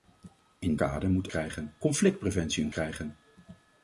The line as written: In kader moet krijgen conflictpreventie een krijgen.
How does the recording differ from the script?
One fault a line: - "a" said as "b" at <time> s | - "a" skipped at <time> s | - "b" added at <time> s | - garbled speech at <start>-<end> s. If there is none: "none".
none